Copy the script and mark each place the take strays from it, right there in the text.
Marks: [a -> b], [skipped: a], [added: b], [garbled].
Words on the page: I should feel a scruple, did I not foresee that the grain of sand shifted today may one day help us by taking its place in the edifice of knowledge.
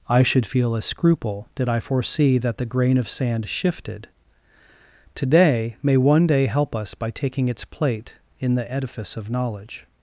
I should feel a scruple, did I [skipped: not] foresee that the grain of sand shifted today may one day help us by taking its [place -> plate] in the edifice of knowledge.